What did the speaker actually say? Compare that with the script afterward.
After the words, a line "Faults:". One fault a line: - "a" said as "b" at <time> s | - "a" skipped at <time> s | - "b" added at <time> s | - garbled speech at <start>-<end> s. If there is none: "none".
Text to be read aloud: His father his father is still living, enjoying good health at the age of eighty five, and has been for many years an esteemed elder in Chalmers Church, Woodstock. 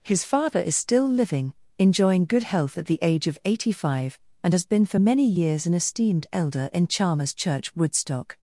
His father is still living, enjoying good health at the age of eighty five, and has been for many years an esteemed elder in Chalmers Church, Woodstock.
Faults:
- "his father" skipped at 0.6 s